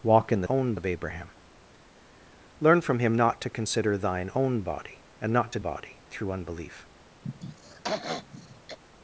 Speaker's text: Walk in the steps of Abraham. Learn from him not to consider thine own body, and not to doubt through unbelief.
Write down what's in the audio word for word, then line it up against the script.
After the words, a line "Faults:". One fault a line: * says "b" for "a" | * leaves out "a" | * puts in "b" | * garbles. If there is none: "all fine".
Walk in the own of Abraham. Learn from him not to consider thine own body, and not to body through unbelief.
Faults:
* says "own" for "steps"
* says "body" for "doubt"